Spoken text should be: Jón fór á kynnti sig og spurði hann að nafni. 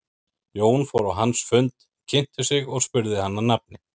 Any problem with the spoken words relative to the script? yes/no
yes